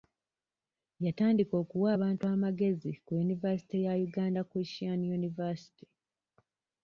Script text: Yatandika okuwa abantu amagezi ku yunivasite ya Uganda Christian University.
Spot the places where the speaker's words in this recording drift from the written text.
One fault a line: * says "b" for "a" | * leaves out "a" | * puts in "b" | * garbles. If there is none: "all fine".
all fine